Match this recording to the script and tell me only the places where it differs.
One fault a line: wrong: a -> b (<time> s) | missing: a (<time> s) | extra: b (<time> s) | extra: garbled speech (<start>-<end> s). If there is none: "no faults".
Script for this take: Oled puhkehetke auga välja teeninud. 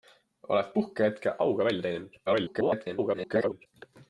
extra: garbled speech (2.3-3.7 s)